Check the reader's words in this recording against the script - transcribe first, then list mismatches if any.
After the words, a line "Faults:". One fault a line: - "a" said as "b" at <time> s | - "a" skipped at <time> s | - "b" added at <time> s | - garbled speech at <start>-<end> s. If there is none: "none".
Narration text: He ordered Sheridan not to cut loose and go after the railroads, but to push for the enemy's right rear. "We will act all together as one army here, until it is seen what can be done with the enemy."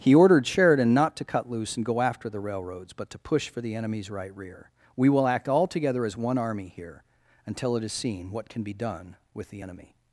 He ordered Sheridan not to cut loose and go after the railroads, but to push for the enemy's right rear. "We will act all together as one army here, until it is seen what can be done with the enemy."
Faults:
none